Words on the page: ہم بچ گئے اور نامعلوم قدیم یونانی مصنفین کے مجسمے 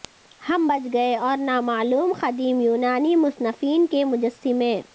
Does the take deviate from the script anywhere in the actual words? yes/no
no